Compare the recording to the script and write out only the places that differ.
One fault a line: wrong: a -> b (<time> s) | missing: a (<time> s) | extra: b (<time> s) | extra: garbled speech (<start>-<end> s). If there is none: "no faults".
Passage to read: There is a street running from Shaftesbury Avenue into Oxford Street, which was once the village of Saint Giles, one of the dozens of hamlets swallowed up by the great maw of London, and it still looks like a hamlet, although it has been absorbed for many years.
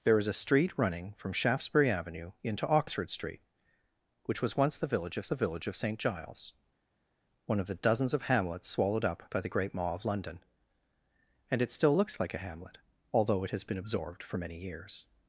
extra: the village of (5.3 s)